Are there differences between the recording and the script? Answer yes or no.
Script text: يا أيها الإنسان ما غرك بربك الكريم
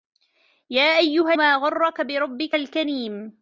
yes